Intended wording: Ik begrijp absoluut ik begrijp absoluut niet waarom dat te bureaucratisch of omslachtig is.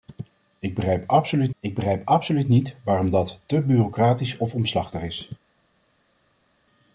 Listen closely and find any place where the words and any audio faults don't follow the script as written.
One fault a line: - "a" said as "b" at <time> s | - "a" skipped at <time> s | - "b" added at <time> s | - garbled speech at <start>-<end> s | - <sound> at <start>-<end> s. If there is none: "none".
none